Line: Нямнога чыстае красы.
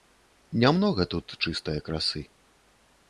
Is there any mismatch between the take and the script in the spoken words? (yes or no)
yes